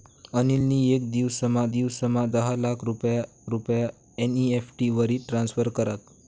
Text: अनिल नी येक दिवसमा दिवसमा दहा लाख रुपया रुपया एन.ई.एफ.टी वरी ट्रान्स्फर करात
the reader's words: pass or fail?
pass